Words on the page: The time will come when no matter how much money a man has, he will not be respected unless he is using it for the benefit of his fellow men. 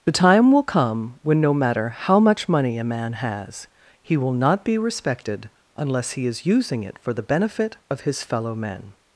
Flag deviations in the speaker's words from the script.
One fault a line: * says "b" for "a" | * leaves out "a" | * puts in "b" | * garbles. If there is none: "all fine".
all fine